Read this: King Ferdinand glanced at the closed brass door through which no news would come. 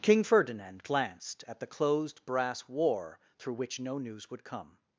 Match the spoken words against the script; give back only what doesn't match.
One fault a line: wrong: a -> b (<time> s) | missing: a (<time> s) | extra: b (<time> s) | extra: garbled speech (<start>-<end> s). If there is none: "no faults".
wrong: door -> war (2.7 s)